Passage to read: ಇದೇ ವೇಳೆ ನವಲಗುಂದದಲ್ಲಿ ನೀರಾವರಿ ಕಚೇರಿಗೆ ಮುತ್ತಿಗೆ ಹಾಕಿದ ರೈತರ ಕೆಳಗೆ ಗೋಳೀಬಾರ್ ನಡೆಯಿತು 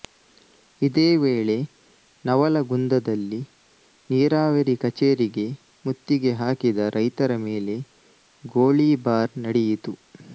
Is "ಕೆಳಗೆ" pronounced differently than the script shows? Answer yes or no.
yes